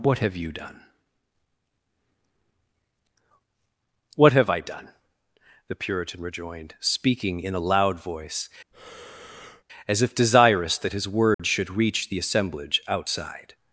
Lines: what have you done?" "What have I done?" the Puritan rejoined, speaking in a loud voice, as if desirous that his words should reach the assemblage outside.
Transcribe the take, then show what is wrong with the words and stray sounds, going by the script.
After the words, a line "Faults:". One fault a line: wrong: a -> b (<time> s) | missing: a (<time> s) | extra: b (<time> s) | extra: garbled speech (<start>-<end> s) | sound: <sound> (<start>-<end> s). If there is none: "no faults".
what have you done?" "What have I done?" the Puritan rejoined, speaking in a loud voice, as if desirous that his words should reach the assemblage outside.
Faults:
sound: breath (8.7-9.6 s)
sound: dropout (11.3-11.4 s)